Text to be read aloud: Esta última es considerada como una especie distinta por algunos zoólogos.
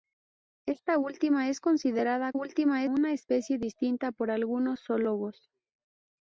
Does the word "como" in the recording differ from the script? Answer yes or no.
yes